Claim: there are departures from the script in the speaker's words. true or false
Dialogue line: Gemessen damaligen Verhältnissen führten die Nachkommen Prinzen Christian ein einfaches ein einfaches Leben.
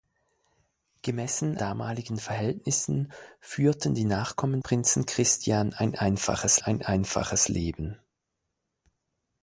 false